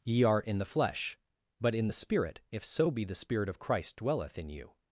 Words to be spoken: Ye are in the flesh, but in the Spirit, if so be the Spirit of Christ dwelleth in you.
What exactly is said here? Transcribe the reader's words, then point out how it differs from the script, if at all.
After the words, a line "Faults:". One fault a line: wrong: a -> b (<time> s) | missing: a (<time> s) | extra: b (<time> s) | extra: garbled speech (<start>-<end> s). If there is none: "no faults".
Ye are in the flesh, but in the Spirit, if so be the Spirit of Christ dwelleth in you.
Faults:
no faults